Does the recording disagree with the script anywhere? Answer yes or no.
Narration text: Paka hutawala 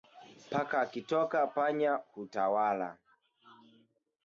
yes